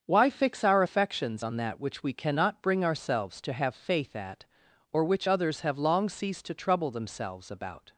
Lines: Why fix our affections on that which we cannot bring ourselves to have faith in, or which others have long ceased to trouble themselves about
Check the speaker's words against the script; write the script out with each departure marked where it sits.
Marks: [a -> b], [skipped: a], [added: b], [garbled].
Why fix our affections on that which we cannot bring ourselves to have faith [in, -> at] or which others have long ceased to trouble themselves about